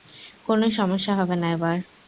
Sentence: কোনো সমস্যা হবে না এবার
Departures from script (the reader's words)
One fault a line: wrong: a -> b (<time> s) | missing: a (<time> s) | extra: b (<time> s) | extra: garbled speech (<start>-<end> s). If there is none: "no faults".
no faults